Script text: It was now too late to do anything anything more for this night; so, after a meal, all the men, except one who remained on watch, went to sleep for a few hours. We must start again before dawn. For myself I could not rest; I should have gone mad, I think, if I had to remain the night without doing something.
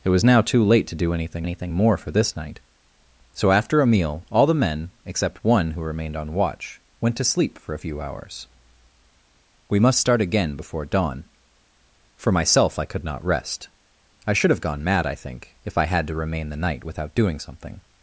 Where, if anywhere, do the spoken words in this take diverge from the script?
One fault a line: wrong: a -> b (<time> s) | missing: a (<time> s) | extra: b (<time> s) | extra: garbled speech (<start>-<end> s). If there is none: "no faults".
no faults